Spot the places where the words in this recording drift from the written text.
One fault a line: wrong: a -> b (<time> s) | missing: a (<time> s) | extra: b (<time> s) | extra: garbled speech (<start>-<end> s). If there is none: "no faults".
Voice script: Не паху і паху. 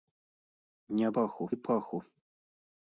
no faults